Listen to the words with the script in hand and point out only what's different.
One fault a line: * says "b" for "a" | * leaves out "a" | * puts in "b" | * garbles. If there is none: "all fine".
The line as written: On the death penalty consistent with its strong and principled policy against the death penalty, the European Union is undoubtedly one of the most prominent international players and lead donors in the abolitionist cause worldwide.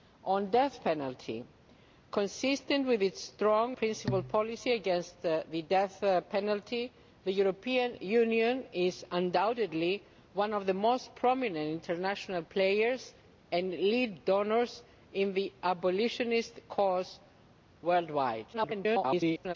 * leaves out "and"
* garbles